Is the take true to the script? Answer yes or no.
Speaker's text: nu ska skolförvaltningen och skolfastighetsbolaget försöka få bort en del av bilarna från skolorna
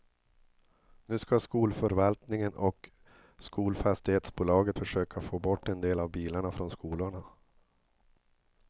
yes